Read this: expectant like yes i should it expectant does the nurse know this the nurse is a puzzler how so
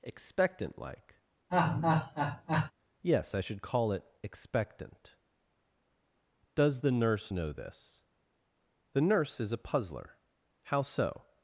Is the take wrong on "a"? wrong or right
right